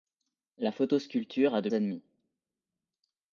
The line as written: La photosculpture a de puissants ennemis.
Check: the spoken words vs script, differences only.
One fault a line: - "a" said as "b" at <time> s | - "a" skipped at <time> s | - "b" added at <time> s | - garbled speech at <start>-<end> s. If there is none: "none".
- "puissants" skipped at 1.7 s